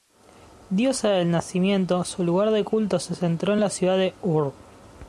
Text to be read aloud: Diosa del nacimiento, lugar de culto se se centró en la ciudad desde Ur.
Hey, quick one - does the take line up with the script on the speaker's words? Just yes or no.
no